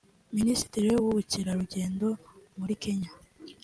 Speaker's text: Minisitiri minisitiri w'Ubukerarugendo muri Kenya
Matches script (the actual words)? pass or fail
fail